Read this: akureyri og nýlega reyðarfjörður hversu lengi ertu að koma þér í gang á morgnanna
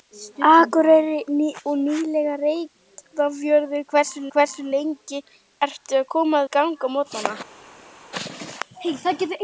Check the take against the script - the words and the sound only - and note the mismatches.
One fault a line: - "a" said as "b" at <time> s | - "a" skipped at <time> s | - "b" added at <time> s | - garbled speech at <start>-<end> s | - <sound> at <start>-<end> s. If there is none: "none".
- "hversu" added at 4.4 s
- "þér" skipped at 6.4 s